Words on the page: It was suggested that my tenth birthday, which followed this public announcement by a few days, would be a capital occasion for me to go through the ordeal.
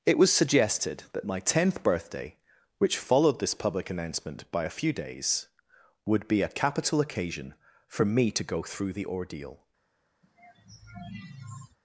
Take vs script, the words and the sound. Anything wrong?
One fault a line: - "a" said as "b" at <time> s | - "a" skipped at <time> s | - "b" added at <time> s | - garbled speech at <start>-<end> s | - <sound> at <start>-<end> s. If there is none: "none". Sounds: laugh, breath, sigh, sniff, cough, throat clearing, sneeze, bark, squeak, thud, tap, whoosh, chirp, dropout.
- sigh at 10.2-11.8 s